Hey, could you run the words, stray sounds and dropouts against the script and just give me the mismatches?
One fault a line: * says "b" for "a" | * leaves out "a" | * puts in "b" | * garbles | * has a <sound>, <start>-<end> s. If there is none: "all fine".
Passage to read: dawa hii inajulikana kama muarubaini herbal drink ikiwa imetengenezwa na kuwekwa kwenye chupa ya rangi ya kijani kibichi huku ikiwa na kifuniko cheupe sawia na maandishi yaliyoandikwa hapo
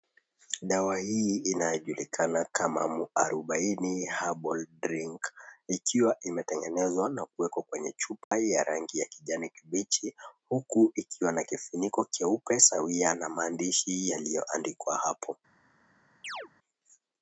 * has a dropout, 8.2-8.3 s
* has a chirp, 16.2-16.5 s